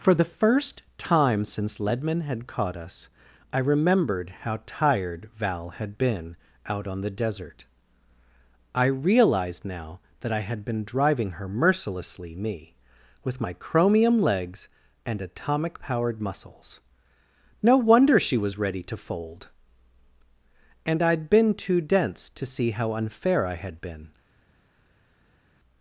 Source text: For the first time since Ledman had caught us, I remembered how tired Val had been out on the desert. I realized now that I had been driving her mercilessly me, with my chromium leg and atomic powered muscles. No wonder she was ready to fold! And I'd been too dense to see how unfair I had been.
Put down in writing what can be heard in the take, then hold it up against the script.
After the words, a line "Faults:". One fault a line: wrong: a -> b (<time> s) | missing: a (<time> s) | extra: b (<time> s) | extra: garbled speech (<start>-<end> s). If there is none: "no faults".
For the first time since Ledman had caught us, I remembered how tired Val had been out on the desert. I realized now that I had been driving her mercilessly me, with my chromium legs and atomic powered muscles. No wonder she was ready to fold! And I'd been too dense to see how unfair I had been.
Faults:
wrong: leg -> legs (14.2 s)